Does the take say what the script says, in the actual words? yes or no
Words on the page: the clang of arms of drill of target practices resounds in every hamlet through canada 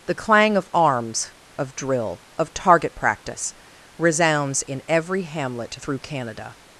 no